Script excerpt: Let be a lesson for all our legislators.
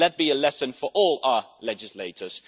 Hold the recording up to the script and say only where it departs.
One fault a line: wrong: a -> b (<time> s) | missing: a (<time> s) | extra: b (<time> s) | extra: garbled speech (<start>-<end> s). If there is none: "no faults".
no faults